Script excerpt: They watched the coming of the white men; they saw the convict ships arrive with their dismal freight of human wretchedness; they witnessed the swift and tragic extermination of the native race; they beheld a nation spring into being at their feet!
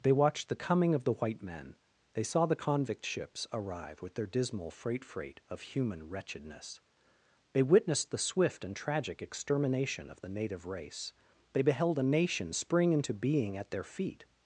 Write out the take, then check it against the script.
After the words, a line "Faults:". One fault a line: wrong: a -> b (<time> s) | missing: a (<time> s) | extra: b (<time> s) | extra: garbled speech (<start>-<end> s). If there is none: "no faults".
They watched the coming of the white men; they saw the convict ships arrive with their dismal freight freight of human wretchedness; they witnessed the swift and tragic extermination of the native race; they beheld a nation spring into being at their feet!
Faults:
extra: freight (5.0 s)